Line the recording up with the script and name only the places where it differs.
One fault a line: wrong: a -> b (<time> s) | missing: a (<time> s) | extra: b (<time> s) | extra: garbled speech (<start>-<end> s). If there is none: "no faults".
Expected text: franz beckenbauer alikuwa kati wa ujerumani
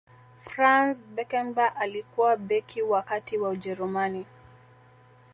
extra: beki wa (2.4 s)